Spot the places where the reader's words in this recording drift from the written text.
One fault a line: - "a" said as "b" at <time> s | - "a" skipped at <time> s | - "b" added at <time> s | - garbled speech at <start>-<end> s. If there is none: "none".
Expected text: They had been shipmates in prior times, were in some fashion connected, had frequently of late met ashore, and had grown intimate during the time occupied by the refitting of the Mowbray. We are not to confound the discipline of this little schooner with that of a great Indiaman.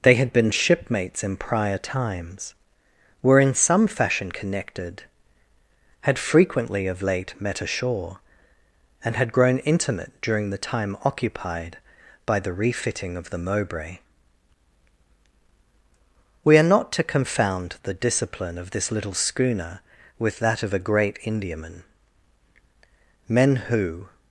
- "Men who" added at 23.3 s